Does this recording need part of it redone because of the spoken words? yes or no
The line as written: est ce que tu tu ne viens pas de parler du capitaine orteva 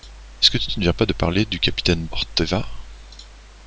no